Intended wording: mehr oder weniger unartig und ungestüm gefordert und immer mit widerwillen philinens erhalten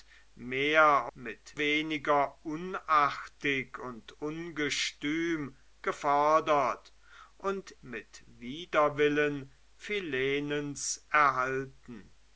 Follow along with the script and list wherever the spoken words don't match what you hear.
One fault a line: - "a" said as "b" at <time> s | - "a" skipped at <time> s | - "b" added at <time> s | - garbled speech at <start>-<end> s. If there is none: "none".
- "oder" said as "mit" at 1.1 s
- "immer" skipped at 7.7 s